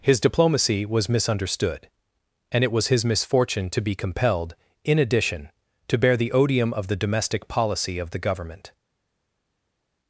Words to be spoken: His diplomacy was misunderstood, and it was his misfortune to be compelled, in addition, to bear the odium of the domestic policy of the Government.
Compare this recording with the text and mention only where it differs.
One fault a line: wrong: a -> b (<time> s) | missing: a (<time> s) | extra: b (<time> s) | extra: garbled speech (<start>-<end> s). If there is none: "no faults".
no faults